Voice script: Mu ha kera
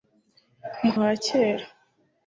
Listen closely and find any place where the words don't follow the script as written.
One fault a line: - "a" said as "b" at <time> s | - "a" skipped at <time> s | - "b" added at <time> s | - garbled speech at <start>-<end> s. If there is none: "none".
none